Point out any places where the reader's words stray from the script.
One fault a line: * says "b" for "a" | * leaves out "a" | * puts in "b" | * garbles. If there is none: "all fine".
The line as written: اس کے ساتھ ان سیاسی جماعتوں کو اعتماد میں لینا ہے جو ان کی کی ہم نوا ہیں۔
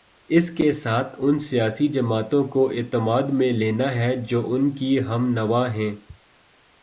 * leaves out "کی"